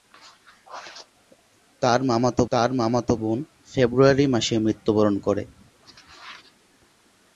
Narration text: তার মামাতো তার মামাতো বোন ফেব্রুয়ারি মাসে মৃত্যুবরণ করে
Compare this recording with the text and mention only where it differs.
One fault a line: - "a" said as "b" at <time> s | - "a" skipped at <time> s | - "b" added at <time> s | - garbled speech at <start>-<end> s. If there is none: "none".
none